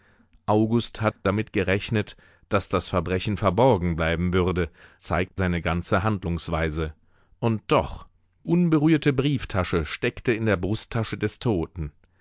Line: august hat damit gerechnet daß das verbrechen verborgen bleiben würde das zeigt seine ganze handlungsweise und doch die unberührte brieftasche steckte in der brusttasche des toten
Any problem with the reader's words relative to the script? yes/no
yes